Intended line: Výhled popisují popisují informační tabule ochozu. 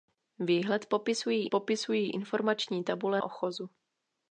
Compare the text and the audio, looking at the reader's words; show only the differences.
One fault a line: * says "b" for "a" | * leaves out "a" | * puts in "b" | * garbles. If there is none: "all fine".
all fine